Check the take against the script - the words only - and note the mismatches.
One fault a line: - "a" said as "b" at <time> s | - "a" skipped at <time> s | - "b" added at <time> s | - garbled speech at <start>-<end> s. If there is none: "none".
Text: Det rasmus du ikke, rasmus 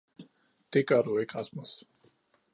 - "rasmus" said as "gør" at 0.9 s